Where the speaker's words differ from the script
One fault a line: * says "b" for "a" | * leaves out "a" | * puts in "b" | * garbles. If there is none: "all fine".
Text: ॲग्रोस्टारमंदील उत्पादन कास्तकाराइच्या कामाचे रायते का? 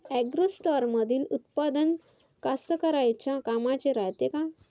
all fine